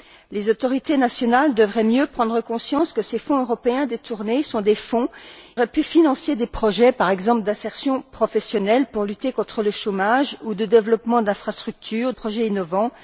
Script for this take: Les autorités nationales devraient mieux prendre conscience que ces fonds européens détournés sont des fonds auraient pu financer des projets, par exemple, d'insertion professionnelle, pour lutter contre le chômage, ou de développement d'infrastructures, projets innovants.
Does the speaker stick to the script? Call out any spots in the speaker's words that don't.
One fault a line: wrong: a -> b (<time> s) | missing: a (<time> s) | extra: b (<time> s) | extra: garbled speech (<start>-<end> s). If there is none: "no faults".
no faults